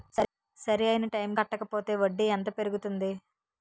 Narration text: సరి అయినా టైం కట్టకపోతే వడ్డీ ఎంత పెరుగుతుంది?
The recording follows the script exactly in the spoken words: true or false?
true